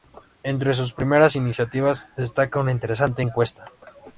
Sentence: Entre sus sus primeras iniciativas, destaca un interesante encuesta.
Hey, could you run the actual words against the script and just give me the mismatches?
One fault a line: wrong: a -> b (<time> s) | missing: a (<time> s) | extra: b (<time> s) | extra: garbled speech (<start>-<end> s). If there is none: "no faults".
missing: sus (0.9 s)
wrong: un -> una (2.6 s)